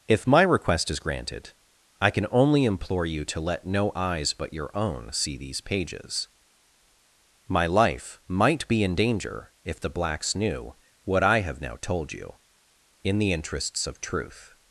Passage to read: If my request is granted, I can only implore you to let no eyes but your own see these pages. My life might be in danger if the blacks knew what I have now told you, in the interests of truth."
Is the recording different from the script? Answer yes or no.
no